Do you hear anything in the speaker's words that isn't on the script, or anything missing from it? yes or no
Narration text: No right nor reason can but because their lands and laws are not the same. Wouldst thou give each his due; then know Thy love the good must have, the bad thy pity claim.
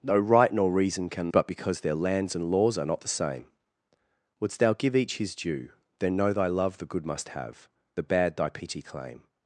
no